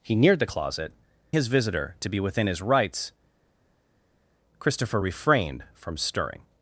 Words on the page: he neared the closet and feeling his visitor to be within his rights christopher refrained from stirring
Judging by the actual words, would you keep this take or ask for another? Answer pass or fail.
fail